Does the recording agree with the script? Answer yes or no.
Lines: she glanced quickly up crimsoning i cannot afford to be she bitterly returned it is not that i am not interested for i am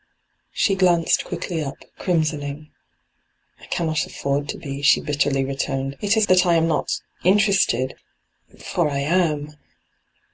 no